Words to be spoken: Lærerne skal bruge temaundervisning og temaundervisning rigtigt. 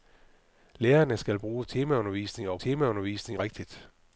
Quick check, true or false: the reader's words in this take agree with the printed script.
true